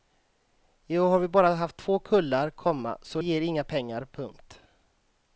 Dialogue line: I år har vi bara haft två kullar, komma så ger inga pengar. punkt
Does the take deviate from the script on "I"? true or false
false